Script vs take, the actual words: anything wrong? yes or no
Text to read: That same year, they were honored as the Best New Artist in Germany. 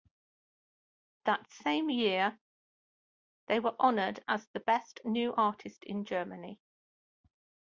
no